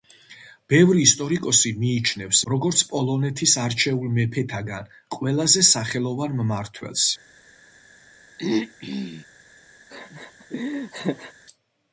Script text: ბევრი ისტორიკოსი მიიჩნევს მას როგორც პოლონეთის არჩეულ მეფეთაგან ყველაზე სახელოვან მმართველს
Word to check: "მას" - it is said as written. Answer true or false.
false